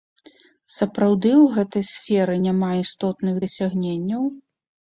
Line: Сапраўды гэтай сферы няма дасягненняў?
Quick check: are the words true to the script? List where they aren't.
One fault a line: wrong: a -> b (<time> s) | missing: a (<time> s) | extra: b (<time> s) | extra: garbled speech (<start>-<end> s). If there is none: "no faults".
extra: ў (1.3 s)
extra: істотных (2.9 s)